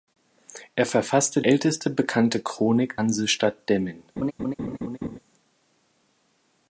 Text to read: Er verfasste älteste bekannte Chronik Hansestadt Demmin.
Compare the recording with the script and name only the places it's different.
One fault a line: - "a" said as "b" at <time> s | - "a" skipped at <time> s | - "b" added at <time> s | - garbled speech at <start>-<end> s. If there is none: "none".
none